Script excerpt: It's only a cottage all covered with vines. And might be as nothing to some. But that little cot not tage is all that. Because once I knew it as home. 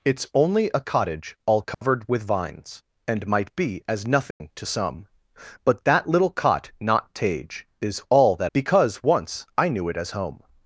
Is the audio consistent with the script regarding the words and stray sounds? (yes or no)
no